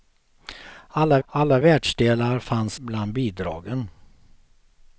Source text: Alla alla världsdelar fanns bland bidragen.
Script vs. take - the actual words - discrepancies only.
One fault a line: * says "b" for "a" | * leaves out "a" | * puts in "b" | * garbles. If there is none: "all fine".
all fine